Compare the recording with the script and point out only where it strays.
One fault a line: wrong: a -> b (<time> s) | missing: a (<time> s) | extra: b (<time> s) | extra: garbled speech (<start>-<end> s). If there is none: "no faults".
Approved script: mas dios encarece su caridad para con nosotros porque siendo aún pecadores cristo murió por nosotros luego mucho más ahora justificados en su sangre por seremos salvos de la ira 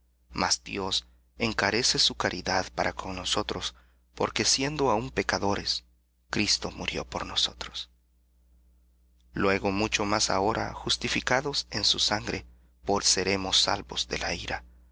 no faults